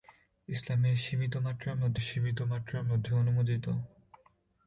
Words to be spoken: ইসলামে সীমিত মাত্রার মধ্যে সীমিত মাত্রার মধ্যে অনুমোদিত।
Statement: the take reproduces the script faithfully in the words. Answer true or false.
true